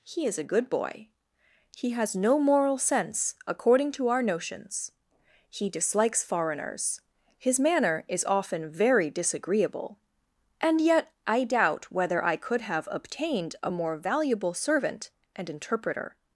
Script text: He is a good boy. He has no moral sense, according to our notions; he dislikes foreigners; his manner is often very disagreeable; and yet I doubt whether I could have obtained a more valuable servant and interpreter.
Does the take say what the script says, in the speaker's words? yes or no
yes